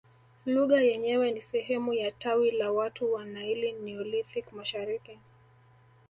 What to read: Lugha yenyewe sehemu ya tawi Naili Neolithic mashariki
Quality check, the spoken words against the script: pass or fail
fail